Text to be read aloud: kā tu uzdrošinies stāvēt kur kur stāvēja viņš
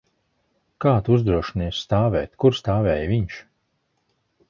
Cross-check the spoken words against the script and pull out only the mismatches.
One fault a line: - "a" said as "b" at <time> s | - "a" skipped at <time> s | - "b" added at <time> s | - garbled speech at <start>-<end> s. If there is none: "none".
- "kur" skipped at 2.6 s